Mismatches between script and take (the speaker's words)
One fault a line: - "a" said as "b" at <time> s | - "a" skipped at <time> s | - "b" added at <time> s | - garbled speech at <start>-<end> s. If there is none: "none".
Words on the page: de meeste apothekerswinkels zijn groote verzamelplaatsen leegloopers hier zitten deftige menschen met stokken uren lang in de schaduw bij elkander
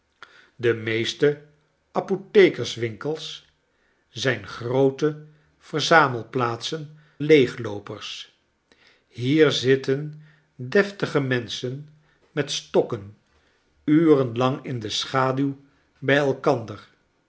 none